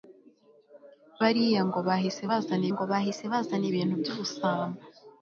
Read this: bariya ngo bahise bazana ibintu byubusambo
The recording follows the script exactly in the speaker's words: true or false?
false